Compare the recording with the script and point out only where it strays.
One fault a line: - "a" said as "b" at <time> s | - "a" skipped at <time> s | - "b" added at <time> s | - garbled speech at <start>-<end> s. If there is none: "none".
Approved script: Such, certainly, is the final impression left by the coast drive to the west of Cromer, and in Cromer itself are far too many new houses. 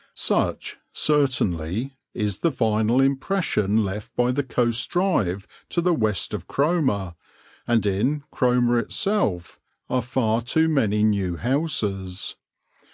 none